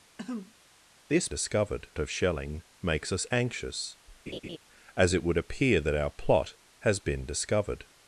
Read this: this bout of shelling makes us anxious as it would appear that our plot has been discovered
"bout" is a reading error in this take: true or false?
true